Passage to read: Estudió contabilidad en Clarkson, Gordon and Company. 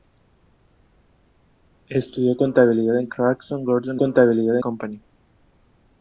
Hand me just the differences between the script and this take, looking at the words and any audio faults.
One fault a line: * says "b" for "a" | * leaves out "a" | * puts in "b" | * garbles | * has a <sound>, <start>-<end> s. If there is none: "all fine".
* says "contabilidad" for "and"